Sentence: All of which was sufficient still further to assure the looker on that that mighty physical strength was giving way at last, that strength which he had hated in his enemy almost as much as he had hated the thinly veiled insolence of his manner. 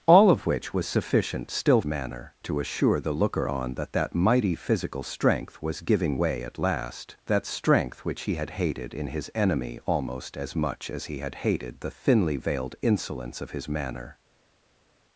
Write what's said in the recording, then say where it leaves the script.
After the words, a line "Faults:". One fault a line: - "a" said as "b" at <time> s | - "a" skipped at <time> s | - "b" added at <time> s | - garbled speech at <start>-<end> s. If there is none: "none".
All of which was sufficient still manner to assure the looker on that that mighty physical strength was giving way at last, that strength which he had hated in his enemy almost as much as he had hated the thinly veiled insolence of his manner.
Faults:
- "further" said as "manner" at 1.8 s